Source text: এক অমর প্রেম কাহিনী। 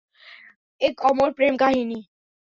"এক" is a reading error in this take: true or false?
false